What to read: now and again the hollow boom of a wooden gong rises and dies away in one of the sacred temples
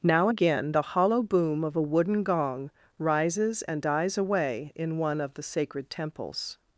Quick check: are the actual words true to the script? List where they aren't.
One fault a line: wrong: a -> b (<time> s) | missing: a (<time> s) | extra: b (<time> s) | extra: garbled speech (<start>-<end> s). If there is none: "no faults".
missing: and (0.3 s)